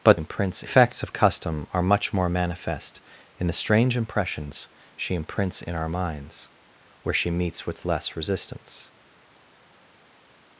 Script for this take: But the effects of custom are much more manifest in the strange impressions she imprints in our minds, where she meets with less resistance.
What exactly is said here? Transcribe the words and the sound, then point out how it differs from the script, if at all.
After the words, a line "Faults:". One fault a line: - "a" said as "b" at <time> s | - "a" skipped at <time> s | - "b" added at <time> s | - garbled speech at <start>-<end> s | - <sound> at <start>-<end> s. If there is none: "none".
But imprints effects of custom are much more manifest in the strange impressions she imprints in our minds, where she meets with less resistance.
Faults:
- "the" said as "imprints" at 0.1 s